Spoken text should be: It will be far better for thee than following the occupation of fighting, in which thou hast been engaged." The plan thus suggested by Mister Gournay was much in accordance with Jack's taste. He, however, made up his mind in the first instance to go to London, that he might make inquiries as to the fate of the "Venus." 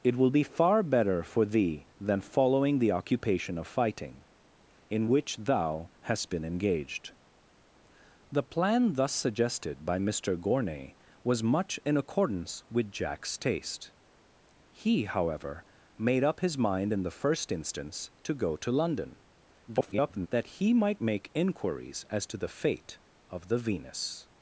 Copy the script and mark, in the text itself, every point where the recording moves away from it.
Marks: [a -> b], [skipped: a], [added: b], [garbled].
It will be far better for thee than following the occupation of fighting, in which thou hast been engaged." The plan thus suggested by Mister Gournay was much in accordance with Jack's taste. He, however, made up his mind in the first instance to go to London, [garbled] that he might make inquiries as to the fate of the "Venus."